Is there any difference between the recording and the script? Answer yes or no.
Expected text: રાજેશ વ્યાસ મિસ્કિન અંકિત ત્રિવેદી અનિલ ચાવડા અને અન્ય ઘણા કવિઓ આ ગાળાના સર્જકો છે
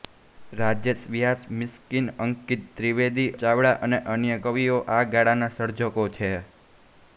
yes